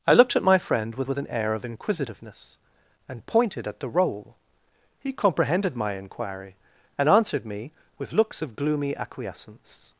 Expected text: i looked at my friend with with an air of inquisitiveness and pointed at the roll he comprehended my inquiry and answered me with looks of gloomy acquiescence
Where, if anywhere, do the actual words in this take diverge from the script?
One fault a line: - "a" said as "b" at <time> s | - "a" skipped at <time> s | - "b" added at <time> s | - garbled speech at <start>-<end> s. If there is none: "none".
none